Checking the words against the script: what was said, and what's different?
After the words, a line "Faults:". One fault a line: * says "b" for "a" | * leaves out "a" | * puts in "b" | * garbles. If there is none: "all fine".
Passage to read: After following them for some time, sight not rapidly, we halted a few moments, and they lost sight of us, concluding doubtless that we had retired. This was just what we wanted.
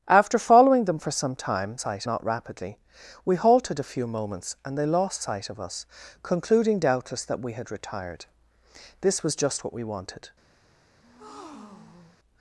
After following them for some time, sight not rapidly, we halted a few moments, and they lost sight of us, concluding doubtless that we had retired. This was just what we wanted.
Faults:
all fine